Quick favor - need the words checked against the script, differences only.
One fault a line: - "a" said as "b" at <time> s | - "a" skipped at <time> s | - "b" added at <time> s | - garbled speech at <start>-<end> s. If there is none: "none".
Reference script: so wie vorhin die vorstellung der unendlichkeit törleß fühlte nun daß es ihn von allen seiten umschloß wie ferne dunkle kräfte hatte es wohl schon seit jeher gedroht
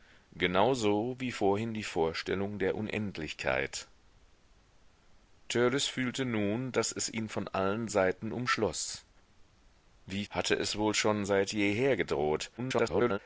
- "ferne dunkle kräfte" skipped at 10.2 s
- garbled speech at 12.6-13.2 s